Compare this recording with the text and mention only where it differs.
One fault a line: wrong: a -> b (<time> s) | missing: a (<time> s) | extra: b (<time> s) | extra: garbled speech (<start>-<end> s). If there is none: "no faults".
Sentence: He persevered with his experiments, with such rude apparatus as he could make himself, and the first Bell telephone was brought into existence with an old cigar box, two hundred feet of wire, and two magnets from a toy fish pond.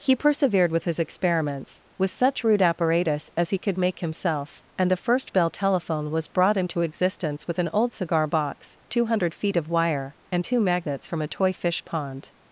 no faults